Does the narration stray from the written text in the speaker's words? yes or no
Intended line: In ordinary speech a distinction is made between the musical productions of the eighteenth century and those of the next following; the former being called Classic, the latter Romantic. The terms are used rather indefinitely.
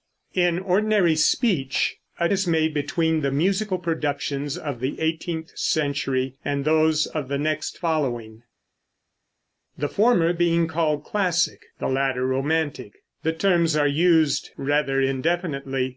yes